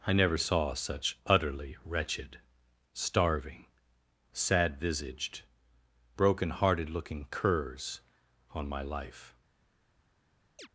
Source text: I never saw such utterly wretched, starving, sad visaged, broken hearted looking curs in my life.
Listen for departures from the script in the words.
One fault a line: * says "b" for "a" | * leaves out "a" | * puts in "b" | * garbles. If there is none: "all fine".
* says "on" for "in"